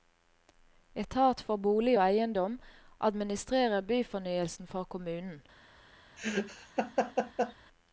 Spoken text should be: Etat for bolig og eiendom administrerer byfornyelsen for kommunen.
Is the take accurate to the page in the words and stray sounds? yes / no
no